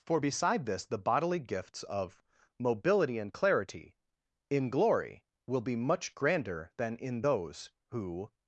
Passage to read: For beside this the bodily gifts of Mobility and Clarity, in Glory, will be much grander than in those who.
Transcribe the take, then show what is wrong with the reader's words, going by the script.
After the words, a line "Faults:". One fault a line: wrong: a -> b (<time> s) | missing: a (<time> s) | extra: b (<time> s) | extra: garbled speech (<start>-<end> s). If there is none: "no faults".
For beside this the bodily gifts of Mobility and Clarity, in Glory, will be much grander than in those who.
Faults:
no faults